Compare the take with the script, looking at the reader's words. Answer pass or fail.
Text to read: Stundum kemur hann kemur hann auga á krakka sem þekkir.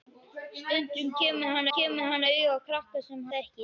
pass